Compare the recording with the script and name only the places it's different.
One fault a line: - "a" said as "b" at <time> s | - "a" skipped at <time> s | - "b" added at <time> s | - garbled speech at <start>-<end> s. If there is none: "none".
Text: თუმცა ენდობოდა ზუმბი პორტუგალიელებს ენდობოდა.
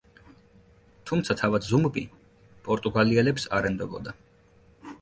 - "ენდობოდა" said as "თავად" at 1.4 s
- "არ" added at 3.6 s